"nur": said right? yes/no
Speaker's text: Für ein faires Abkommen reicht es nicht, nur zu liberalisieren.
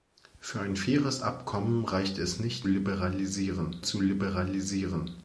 no